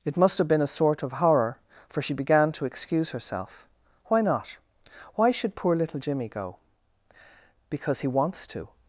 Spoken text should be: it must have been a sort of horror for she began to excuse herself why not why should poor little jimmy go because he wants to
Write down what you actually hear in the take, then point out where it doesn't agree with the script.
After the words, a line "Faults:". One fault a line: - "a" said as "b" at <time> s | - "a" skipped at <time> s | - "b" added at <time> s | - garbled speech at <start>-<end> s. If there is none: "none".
it must have been a sort of horror for she began to excuse herself why not why should poor little jimmy go because he wants to
Faults:
none